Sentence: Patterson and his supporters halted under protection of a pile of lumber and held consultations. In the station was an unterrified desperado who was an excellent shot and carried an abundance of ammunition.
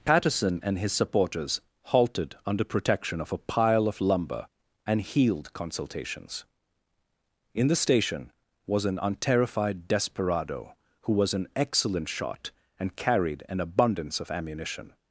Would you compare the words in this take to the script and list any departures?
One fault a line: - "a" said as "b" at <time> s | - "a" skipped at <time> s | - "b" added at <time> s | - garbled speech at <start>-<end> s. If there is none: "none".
- "held" said as "healed" at 5.0 s